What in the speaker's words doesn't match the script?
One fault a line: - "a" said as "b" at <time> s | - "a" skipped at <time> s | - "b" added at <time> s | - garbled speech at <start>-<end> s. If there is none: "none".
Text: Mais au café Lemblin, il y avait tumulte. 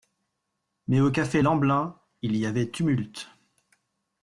none